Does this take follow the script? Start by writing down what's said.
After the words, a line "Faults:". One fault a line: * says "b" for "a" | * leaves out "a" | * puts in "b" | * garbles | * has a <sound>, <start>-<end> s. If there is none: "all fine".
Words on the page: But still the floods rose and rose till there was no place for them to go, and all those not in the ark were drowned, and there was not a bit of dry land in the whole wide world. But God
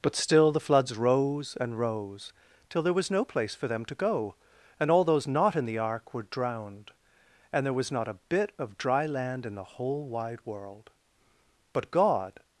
But still the floods rose and rose till there was no place for them to go, and all those not in the ark were drowned, and there was not a bit of dry land in the whole wide world. But God
Faults:
all fine